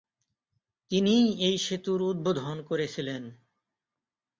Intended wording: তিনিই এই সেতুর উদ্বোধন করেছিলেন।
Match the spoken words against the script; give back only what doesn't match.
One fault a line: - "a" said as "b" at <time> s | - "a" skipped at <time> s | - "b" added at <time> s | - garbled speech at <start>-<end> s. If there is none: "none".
none